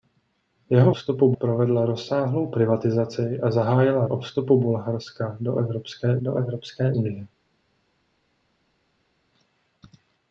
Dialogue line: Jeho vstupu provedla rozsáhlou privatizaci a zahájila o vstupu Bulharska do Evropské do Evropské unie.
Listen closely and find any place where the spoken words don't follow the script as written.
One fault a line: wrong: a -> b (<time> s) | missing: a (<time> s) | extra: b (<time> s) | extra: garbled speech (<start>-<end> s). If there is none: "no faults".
no faults